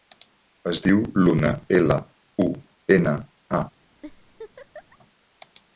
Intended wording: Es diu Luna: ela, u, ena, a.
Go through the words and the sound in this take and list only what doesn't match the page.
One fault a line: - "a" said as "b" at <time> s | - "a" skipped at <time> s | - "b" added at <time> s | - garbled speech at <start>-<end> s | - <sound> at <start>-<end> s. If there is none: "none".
- laugh at 4.0-5.0 s